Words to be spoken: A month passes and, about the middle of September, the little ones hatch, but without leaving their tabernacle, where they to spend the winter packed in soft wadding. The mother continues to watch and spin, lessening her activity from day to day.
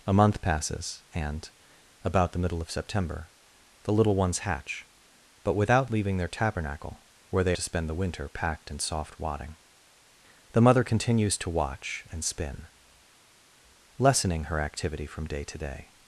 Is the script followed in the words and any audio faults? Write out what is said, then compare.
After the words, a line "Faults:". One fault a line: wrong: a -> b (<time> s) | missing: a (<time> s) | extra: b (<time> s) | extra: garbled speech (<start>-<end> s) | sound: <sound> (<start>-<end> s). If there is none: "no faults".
A month passes and, about the middle of September, the little ones hatch, but without leaving their tabernacle, where they to spend the winter packed in soft wadding. The mother continues to watch and spin, lessening her activity from day to day.
Faults:
no faults